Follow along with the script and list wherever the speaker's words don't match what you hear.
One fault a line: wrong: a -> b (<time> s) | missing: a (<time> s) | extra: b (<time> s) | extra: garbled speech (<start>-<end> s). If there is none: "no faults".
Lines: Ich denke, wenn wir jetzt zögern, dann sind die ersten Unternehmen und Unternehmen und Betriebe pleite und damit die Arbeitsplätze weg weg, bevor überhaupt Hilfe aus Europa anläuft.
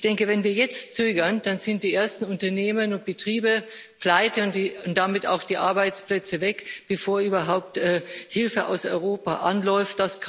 missing: Unternehmen und (3.0 s)
extra: auch (5.3 s)
missing: weg (6.6 s)